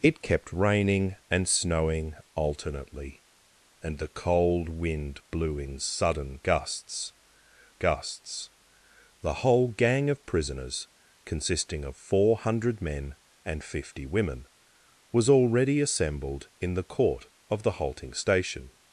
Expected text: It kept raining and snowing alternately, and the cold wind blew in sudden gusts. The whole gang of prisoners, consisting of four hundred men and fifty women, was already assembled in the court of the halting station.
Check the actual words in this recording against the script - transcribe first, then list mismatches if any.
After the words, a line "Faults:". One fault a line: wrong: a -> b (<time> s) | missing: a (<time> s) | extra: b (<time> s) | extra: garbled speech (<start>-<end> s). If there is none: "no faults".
It kept raining and snowing alternately, and the cold wind blew in sudden gusts gusts. The whole gang of prisoners, consisting of four hundred men and fifty women, was already assembled in the court of the halting station.
Faults:
extra: gusts (7.8 s)